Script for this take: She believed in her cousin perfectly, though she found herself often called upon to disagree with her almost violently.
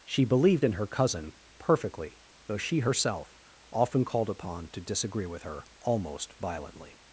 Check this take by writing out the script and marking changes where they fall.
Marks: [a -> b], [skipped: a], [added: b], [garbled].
She believed in her cousin perfectly, though she [skipped: found] herself often called upon to disagree with her almost violently.